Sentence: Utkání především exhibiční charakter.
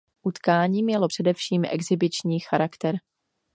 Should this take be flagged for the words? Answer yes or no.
yes